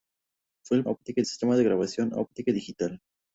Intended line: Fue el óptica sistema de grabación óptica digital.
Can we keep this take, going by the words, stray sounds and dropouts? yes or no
yes